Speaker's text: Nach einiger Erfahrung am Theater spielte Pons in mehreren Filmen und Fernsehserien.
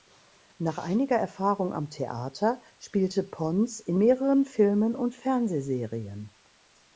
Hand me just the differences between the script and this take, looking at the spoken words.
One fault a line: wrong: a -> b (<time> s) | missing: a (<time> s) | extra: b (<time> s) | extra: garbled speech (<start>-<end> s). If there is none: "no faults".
no faults